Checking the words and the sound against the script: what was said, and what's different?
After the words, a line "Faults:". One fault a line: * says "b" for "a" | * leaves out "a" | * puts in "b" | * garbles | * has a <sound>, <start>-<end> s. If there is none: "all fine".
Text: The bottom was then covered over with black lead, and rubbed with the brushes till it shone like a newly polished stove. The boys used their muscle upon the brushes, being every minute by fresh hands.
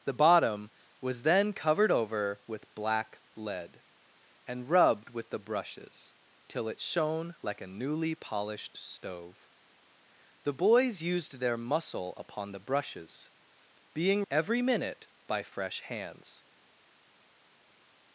The bottom was then covered over with black lead, and rubbed with the brushes till it shone like a newly polished stove. The boys used their muscle upon the brushes, being every minute by fresh hands.
Faults:
all fine